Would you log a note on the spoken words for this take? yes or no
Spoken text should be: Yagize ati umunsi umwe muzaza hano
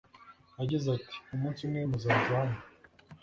no